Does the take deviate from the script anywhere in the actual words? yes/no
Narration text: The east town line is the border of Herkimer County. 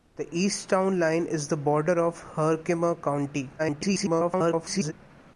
yes